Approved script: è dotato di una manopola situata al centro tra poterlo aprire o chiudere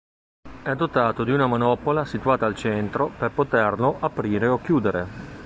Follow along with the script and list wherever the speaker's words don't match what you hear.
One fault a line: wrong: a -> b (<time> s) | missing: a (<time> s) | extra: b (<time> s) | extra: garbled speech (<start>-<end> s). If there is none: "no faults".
wrong: tra -> per (3.2 s)